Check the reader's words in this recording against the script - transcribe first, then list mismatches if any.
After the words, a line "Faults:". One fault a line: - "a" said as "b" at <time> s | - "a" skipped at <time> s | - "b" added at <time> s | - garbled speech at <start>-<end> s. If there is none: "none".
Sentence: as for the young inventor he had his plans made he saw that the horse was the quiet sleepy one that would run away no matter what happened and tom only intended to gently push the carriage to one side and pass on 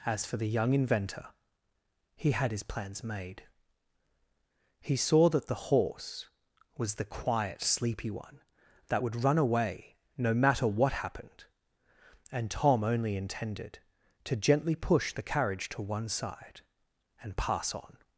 as for the young inventor he had his plans made he saw that the horse was the quiet sleepy one that would run away no matter what happened and tom only intended to gently push the carriage to one side and pass on
Faults:
none